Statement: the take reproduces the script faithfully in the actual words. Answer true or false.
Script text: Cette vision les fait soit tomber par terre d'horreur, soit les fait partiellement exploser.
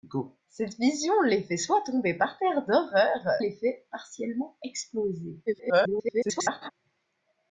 false